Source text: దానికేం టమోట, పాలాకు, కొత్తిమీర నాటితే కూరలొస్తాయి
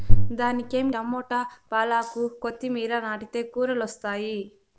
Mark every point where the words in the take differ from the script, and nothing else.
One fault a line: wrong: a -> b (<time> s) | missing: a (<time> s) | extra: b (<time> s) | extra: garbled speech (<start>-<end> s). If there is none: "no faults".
no faults